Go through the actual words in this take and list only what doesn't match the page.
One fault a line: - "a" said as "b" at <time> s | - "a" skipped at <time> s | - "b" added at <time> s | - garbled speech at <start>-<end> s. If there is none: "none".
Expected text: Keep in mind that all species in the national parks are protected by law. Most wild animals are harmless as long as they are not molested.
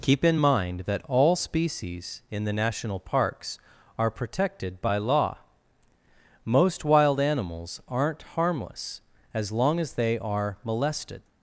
- "are" said as "aren't" at 7.9 s
- "not" skipped at 10.6 s